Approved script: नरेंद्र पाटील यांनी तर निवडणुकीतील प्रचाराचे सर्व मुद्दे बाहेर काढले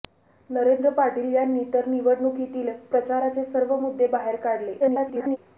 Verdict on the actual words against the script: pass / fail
fail